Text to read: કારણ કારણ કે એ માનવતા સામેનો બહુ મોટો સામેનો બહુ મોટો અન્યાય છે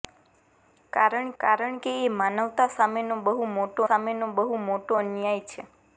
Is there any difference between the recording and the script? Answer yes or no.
no